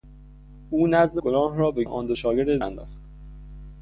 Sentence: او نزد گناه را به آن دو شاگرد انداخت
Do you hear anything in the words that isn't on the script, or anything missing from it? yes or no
no